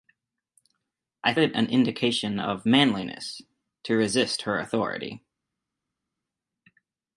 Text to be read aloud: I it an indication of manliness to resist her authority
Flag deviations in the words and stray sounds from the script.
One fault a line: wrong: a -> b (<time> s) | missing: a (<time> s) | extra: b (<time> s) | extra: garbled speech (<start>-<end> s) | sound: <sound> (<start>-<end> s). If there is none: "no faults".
no faults